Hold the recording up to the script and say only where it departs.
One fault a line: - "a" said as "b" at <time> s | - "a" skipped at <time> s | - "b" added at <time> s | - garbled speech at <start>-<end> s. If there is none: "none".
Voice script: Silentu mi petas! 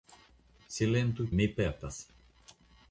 none